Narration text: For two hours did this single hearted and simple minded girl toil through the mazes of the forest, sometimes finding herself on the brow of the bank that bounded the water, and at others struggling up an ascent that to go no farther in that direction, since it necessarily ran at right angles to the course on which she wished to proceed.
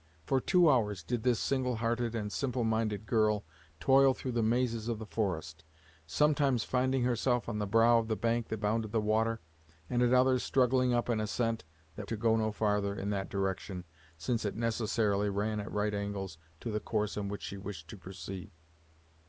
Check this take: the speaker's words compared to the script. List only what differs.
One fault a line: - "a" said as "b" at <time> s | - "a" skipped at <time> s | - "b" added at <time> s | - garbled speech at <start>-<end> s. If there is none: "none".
none